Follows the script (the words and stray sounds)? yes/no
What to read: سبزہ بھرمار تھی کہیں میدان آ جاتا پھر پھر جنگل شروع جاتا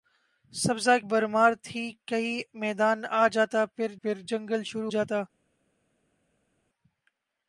yes